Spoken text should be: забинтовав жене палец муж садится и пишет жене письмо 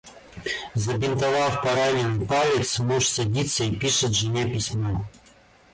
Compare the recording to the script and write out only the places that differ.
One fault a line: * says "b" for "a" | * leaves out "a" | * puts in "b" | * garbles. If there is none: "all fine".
* says "пораненный" for "жене"